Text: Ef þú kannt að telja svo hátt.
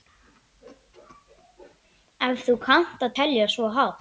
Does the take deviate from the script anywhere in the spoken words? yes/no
no